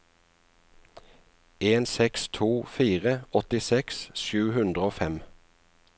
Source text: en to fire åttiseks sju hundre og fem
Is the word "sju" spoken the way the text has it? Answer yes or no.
yes